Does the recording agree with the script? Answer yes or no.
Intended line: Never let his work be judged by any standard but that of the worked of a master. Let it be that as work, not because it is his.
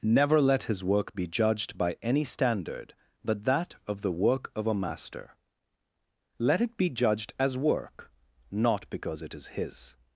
no